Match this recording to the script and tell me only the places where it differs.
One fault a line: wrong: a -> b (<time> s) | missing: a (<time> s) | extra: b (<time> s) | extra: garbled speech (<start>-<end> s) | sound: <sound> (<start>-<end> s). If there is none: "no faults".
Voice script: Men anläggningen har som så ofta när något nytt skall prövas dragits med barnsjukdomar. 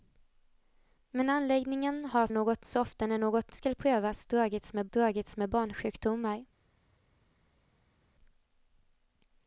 wrong: som -> något (2.3 s)
missing: nytt (3.5 s)
extra: dragits med (4.9 s)